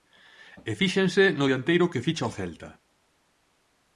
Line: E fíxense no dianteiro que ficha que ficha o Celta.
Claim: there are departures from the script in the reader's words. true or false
true